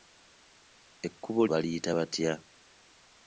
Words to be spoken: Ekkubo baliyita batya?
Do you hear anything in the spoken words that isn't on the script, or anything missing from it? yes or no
no